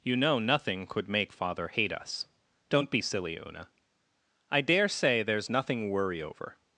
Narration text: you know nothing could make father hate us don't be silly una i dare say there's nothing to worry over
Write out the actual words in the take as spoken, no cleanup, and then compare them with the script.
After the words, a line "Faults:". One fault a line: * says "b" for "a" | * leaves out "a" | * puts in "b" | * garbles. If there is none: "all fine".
you know nothing could make father hate us don't be silly una i dare say there's nothing worry over
Faults:
* leaves out "to"